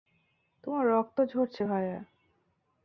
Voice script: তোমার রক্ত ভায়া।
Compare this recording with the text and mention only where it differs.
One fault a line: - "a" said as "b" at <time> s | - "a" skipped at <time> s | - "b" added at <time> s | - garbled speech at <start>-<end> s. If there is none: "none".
- "ঝরছে" added at 1.2 s